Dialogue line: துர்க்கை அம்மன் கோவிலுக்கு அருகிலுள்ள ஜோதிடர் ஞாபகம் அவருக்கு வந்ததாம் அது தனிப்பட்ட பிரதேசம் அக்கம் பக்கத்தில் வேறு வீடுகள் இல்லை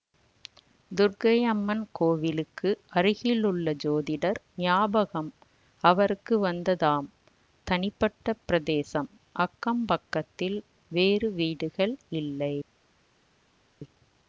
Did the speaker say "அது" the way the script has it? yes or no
no